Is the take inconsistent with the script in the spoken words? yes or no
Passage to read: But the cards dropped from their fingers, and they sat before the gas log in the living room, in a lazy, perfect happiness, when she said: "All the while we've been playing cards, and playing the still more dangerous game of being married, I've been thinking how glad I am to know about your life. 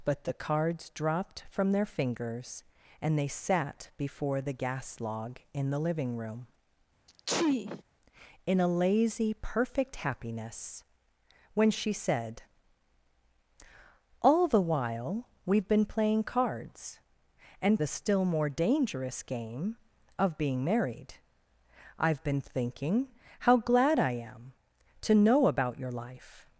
yes